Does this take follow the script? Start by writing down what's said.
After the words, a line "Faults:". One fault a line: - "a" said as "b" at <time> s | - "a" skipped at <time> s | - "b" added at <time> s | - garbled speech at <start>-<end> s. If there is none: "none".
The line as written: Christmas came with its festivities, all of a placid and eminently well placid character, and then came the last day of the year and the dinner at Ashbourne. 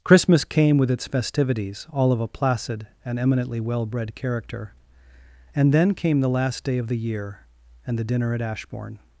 Christmas came with its festivities, all of a placid and eminently well bred character, and then came the last day of the year and the dinner at Ashbourne.
Faults:
- "placid" said as "bred" at 3.9 s